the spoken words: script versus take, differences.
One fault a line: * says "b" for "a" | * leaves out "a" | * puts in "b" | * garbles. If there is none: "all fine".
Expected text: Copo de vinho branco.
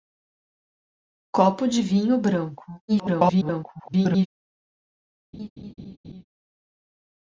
* garbles